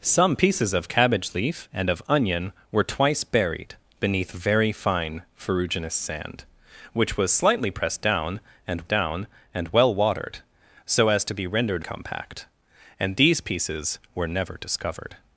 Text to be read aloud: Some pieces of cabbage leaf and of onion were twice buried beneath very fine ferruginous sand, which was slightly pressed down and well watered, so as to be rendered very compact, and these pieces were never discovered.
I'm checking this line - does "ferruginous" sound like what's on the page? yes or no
yes